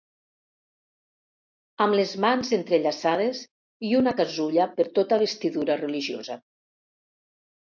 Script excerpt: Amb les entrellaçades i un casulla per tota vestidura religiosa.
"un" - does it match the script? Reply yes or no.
no